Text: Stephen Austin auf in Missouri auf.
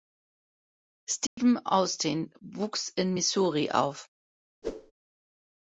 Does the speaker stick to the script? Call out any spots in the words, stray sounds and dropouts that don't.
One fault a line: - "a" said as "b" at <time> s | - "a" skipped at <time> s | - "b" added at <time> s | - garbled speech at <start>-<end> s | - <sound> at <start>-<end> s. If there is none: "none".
- dropout at 1.3-1.4 s
- "auf" said as "wuchs" at 2.4 s
- whoosh at 4.6-4.9 s